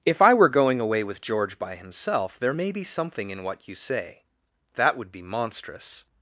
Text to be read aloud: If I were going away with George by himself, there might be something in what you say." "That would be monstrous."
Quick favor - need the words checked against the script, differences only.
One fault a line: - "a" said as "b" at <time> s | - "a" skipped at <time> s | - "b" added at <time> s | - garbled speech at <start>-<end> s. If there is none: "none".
- "might" said as "may" at 2.5 s